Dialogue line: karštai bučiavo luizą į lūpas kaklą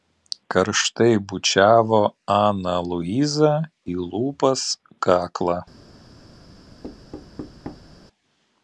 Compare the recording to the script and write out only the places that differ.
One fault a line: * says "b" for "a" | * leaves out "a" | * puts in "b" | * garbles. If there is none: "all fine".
* puts in "aną"